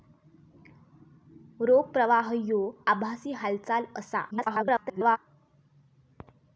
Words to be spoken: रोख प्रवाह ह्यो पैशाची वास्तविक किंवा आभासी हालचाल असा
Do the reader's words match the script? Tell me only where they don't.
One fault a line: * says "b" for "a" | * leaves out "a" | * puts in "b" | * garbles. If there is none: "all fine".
* leaves out "पैशाची वास्तविक किंवा"
* garbles